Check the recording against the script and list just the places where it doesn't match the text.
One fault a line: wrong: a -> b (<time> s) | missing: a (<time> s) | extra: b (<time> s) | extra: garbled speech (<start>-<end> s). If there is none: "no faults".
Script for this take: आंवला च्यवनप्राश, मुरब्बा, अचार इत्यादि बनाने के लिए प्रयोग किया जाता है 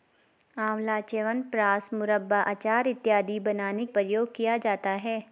missing: के लिए (3.9 s)